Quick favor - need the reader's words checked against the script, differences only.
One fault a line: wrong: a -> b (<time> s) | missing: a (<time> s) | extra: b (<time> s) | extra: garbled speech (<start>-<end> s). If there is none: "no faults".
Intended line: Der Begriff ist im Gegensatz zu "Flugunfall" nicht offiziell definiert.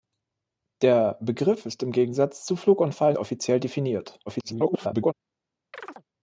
missing: nicht (3.1 s)
extra: garbled speech (4.3-5.1 s)